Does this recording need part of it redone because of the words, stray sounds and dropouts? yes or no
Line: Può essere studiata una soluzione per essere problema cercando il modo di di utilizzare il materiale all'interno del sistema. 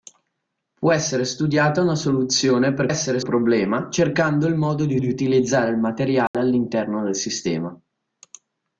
yes